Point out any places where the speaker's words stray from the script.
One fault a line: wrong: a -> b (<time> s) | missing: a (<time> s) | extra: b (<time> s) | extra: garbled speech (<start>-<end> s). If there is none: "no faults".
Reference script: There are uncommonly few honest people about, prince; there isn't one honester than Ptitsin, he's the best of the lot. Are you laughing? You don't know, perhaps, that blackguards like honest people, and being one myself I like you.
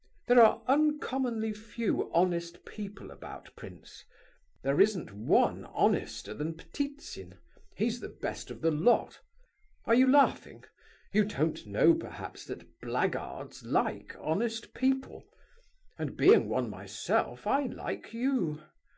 no faults